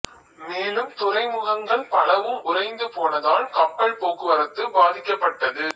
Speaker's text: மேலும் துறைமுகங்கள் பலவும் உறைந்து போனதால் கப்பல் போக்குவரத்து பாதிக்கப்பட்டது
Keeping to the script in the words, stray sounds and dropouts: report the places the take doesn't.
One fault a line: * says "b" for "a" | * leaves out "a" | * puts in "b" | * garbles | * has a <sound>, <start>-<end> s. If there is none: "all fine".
all fine